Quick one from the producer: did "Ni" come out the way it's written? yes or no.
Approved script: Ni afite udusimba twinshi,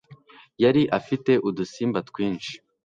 no